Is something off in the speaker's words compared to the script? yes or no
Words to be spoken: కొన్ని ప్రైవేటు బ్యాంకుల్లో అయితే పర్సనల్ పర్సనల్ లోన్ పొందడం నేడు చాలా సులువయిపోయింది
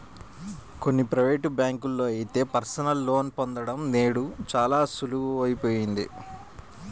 yes